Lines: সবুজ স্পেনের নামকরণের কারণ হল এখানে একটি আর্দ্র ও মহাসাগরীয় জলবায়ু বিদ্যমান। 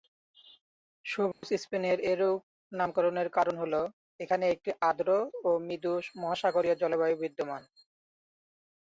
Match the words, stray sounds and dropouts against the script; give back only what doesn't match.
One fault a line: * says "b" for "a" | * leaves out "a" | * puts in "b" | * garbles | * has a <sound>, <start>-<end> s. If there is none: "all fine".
* has a dropout, 1.3-1.4 s
* puts in "এরূপ"
* puts in "মৃদু"